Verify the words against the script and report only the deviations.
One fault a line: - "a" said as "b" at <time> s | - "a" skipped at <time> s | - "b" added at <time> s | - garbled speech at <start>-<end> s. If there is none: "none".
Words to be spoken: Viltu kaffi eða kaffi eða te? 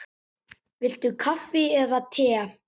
- "kaffi eða" skipped at 2.0 s